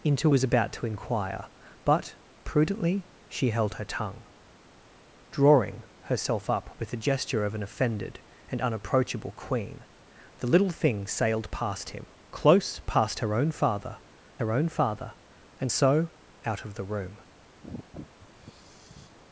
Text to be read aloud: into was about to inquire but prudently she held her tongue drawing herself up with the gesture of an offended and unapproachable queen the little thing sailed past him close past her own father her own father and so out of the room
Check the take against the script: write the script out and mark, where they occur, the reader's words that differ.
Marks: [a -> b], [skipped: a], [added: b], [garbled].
into was about to inquire but prudently she held her tongue drawing herself up with the gesture of an offended and unapproachable queen the little thing sailed past him close past her own father her own father and so out of the room